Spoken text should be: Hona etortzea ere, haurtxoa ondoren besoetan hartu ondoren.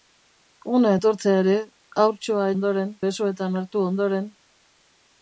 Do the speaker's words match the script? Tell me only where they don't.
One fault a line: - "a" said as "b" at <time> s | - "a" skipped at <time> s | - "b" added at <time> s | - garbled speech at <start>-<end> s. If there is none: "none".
none